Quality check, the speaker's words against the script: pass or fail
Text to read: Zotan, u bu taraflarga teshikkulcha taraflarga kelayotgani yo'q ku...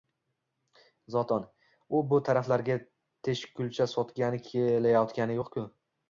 fail